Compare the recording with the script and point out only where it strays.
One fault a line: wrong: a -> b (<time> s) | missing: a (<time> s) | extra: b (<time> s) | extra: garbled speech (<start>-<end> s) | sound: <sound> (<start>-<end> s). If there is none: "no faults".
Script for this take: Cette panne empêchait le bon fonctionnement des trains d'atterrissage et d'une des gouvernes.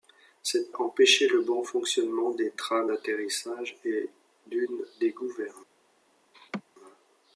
missing: panne (0.7 s)
sound: laugh (6.3-6.6 s)